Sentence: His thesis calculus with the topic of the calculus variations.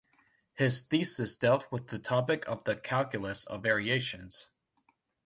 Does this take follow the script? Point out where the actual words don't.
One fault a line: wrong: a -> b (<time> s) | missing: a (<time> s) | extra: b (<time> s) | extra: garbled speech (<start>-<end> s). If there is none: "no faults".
wrong: calculus -> dealt (1.3 s)
extra: of (3.4 s)